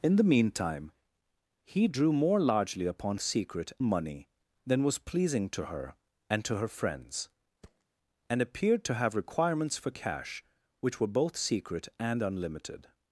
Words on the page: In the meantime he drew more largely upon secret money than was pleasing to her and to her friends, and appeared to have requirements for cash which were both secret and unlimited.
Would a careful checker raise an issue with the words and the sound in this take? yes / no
yes